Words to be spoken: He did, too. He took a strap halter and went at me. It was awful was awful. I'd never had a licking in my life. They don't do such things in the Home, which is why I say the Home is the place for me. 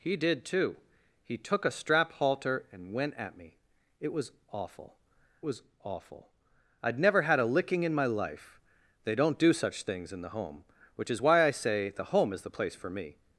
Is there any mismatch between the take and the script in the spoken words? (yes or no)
no